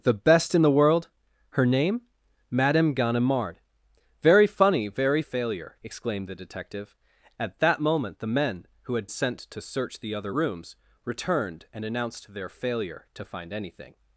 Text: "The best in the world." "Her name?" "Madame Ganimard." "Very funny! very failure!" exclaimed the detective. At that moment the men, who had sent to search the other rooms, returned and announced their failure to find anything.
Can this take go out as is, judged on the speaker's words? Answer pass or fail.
pass